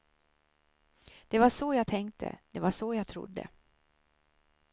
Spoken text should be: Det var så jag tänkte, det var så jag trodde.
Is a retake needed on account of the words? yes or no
no